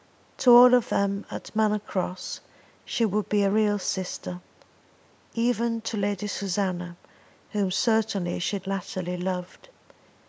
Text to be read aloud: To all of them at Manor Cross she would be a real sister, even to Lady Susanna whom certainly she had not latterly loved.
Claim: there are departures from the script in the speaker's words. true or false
true